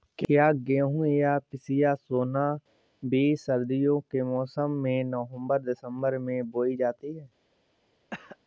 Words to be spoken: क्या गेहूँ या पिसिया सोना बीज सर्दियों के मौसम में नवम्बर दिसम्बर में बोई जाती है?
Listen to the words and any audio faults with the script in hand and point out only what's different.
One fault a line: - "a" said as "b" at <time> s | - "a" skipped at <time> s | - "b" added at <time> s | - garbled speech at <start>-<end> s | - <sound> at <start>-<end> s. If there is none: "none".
- cough at 8.1-8.4 s